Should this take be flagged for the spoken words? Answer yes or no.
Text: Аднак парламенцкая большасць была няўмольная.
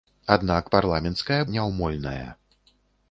yes